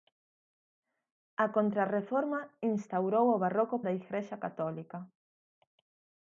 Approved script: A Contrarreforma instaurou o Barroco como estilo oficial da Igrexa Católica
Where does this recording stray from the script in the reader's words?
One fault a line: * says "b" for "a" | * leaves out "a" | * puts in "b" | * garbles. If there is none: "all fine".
* leaves out "como estilo oficial"